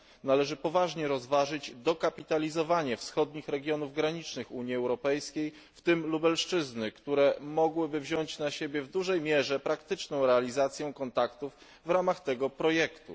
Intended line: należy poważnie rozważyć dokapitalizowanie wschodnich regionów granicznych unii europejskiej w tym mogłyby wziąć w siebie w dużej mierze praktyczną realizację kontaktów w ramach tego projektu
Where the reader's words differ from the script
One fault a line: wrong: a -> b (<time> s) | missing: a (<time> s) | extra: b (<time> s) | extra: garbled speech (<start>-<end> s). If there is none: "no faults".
extra: lubelszczyzny które (6.1 s)
wrong: w -> na (8.4 s)